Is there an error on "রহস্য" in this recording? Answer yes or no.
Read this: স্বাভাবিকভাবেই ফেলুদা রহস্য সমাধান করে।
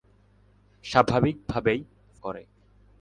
yes